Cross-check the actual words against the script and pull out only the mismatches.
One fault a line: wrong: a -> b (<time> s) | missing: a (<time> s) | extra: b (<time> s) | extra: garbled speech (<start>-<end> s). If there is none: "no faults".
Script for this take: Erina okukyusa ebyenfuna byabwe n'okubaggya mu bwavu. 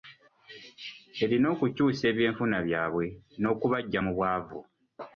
no faults